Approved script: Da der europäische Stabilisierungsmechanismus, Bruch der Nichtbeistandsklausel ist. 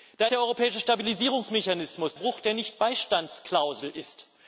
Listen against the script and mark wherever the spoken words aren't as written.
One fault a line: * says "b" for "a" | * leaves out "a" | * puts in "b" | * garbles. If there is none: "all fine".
all fine